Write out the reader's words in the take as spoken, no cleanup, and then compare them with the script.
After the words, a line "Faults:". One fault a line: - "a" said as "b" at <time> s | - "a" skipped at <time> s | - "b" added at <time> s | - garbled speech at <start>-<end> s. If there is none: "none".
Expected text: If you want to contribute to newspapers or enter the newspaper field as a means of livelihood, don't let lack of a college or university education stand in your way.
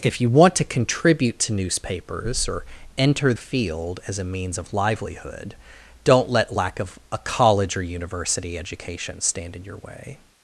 If you want to contribute to newspapers or enter field as a means of livelihood, don't let lack of a college or university education stand in your way.
Faults:
- "the newspaper" skipped at 3.3 s